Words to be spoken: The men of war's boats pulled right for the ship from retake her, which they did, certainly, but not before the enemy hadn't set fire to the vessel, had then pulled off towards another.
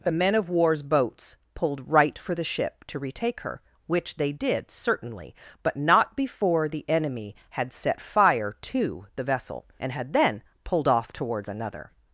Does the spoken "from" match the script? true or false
false